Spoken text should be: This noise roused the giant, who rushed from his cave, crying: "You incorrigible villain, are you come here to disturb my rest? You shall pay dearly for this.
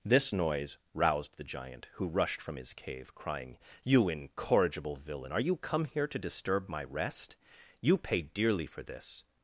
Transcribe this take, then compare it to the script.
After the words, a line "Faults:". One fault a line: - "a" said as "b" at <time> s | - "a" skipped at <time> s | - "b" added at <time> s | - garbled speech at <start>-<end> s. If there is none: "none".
This noise roused the giant, who rushed from his cave, crying: "You incorrigible villain, are you come here to disturb my rest? You pay dearly for this.
Faults:
- "shall" skipped at 8.0 s